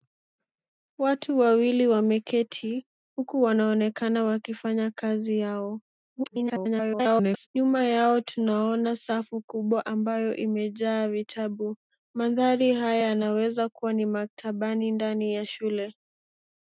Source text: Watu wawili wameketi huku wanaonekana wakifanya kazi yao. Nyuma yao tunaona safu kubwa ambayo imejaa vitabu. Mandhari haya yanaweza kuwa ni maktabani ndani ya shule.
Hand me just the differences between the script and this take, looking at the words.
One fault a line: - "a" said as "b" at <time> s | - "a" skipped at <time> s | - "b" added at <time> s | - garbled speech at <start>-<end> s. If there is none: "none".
- garbled speech at 6.2-7.5 s